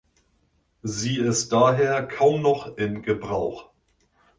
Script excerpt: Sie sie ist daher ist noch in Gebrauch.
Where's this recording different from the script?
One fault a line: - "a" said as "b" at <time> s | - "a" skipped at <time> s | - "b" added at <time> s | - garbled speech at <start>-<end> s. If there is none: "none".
- "sie" skipped at 1.2 s
- "ist" said as "kaum" at 2.0 s